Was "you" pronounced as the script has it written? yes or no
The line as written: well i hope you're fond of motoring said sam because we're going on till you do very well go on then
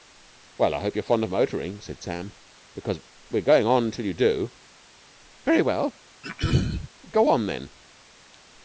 yes